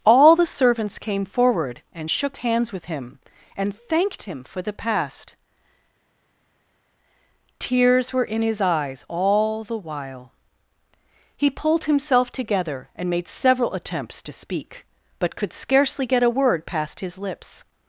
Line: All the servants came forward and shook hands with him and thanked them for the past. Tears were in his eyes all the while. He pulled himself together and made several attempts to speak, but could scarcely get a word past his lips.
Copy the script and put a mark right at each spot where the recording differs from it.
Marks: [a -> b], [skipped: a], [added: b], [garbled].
All the servants came forward and shook hands with him and thanked [them -> him] for the past. Tears were in his eyes all the while. He pulled himself together and made several attempts to speak, but could scarcely get a word past his lips.